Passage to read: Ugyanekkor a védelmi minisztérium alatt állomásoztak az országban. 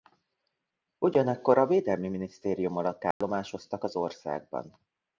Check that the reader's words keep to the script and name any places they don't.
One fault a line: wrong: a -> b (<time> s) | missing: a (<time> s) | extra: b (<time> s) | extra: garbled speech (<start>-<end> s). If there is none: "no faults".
no faults